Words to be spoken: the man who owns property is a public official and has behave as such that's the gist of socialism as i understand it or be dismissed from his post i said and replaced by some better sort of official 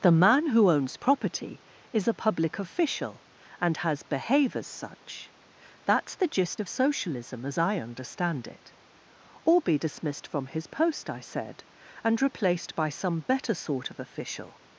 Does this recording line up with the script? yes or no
yes